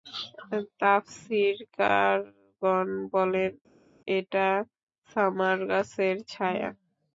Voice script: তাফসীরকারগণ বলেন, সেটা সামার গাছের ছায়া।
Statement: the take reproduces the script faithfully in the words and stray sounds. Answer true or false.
false